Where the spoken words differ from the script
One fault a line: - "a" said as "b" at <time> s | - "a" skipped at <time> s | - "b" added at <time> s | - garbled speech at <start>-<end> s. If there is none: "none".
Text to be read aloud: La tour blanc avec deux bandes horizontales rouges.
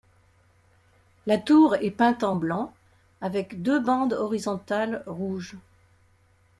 - "est peinte en" added at 1.8 s